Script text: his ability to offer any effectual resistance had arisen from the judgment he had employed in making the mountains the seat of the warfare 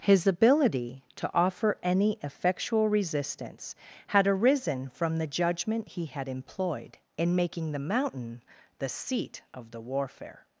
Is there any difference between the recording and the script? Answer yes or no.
yes